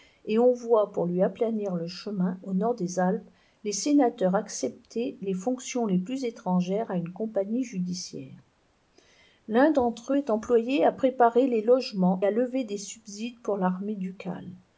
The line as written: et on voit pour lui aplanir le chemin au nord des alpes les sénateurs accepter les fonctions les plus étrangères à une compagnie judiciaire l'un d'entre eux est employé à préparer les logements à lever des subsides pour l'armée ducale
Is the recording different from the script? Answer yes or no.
no